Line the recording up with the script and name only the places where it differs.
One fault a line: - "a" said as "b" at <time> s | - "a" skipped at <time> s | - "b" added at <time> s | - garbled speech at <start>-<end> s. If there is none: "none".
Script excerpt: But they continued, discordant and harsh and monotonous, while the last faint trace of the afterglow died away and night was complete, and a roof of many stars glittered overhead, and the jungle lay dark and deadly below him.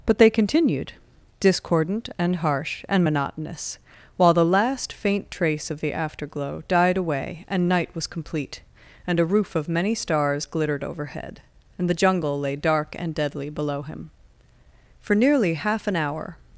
- "For nearly half an hour" added at 15.0 s